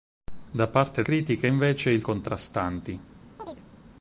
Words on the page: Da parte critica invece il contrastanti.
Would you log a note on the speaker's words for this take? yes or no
no